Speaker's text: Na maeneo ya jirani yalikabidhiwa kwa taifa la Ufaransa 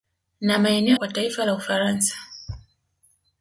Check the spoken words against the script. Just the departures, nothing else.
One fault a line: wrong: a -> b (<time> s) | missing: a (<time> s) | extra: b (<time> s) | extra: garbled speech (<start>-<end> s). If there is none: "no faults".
missing: ya jirani yalikabidhiwa (1.0 s)